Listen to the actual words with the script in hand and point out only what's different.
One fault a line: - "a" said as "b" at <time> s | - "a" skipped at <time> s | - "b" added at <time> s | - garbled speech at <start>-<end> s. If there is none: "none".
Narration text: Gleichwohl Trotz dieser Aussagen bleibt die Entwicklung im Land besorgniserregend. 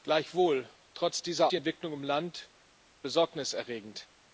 - "Aussagen bleibt" skipped at 1.5 s